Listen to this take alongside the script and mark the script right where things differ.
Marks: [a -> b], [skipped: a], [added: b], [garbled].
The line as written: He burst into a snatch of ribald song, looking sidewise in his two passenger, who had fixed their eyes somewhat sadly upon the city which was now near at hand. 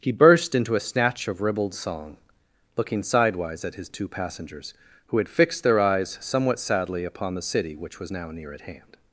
He burst into a snatch of ribald song, looking sidewise [in -> at] his two [passenger, -> passengers] who had fixed their eyes somewhat sadly upon the city which was now near at hand.